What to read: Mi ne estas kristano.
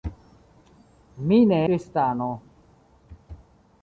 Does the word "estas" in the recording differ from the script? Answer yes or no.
yes